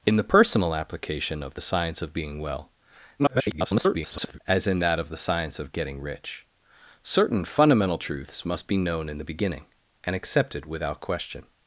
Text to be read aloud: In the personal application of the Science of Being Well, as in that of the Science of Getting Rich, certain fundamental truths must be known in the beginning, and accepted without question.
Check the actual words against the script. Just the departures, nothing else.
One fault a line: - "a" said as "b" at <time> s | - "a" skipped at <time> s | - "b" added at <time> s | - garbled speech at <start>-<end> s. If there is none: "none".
- garbled speech at 3.2-4.4 s